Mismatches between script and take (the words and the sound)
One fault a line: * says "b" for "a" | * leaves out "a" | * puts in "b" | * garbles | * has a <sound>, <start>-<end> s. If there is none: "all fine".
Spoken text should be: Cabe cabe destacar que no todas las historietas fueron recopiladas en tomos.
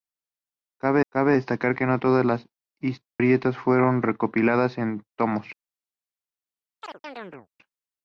* has a dropout, 3.1-3.2 s
* has a chirp, 6.8-7.5 s